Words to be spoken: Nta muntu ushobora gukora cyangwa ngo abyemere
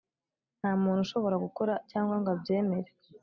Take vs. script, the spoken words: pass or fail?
pass